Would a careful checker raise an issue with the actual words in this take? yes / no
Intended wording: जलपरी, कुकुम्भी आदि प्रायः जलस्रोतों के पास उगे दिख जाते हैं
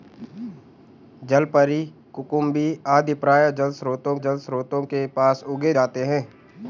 yes